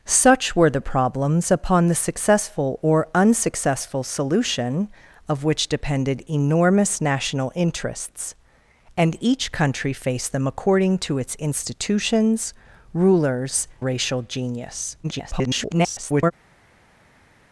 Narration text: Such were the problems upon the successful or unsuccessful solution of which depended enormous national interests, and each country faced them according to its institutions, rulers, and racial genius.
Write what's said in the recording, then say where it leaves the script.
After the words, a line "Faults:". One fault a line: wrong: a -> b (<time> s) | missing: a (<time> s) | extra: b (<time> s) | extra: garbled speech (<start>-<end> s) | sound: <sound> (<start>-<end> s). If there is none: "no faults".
Such were the problems upon the successful or unsuccessful solution of which depended enormous national interests, and each country faced them according to its institutions, rulers, racial genius. [garbled]
Faults:
missing: and (13.7 s)
extra: garbled speech (15.0-16.3 s)